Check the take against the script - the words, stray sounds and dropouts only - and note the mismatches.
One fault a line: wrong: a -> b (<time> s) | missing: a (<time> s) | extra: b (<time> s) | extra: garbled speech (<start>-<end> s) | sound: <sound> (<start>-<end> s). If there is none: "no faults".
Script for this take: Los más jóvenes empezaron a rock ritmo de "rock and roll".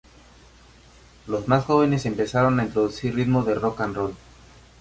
wrong: rock -> introducir (2.6 s)